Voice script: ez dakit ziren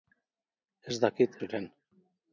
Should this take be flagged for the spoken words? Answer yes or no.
no